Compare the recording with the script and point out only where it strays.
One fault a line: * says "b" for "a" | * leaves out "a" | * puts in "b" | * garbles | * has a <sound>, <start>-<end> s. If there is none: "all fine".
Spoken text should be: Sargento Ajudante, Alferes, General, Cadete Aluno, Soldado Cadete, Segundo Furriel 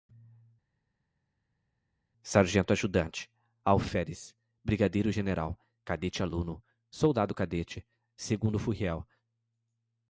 * puts in "Brigadeiro"